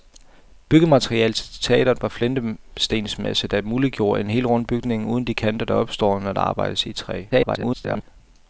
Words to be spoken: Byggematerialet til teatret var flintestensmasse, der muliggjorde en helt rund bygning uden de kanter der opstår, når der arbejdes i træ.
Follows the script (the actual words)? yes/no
no